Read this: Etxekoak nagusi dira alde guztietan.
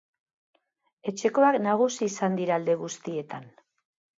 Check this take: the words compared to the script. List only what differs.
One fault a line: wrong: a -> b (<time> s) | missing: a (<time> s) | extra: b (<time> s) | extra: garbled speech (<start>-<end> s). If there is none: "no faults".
extra: izan (2.1 s)